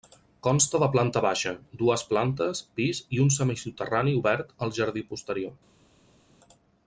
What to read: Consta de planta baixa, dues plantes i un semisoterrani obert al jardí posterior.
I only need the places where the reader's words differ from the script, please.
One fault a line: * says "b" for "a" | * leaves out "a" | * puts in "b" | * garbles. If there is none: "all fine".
* puts in "pis"